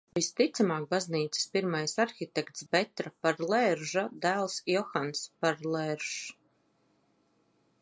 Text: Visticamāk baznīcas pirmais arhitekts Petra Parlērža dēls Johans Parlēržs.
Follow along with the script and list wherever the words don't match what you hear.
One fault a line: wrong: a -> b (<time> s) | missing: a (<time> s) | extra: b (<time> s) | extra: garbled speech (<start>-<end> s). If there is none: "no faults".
no faults